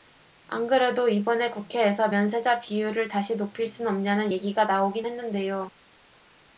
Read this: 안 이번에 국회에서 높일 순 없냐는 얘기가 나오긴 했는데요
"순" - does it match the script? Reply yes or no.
yes